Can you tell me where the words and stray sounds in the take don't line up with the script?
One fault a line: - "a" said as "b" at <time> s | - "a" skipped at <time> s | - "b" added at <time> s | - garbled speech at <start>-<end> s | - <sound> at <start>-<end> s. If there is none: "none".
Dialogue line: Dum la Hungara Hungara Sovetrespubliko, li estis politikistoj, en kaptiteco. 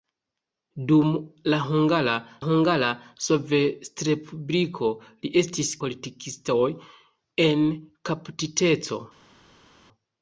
none